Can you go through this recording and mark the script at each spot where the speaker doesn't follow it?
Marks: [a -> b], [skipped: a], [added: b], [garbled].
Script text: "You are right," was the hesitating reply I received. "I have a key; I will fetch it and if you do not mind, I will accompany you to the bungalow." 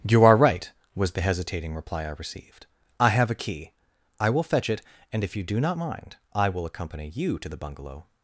"You are right," was the hesitating reply I received. "I have a key; I will fetch it and if you do not mind, I will accompany you to the bungalow."